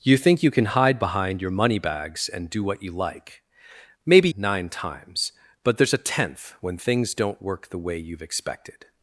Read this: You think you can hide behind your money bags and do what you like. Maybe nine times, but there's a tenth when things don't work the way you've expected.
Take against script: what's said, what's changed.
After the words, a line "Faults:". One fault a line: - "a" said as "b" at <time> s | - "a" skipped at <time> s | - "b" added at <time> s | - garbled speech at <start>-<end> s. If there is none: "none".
You think you can hide behind your money bags and do what you like. Maybe nine times, but there's a tenth when things don't work the way you've expected.
Faults:
none